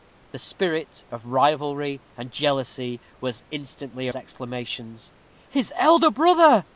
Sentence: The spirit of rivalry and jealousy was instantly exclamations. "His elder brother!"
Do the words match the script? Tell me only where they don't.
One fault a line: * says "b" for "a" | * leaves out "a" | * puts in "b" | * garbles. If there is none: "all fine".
all fine